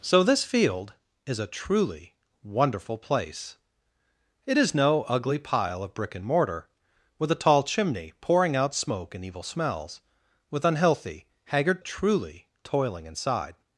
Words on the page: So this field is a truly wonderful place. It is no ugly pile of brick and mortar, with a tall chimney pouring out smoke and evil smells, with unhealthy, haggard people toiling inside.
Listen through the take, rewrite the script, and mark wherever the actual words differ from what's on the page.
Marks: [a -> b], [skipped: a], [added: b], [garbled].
So this field is a truly wonderful place. It is no ugly pile of brick and mortar, with a tall chimney pouring out smoke and evil smells, with unhealthy, haggard [people -> truly] toiling inside.